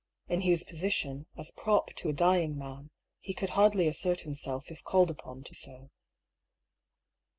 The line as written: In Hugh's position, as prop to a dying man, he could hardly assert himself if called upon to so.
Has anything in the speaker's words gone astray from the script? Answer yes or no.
no